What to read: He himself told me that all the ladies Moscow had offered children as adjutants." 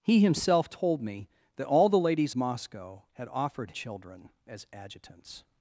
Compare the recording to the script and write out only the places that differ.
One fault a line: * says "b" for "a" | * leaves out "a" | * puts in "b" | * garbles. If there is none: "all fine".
all fine